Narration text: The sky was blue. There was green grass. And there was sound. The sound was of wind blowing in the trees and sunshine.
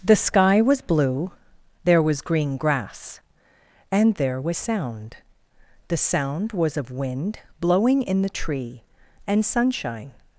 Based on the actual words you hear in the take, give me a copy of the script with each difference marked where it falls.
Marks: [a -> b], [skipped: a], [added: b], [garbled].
The sky was blue. There was green grass. And there was sound. The sound was of wind blowing in the [trees -> tree] and sunshine.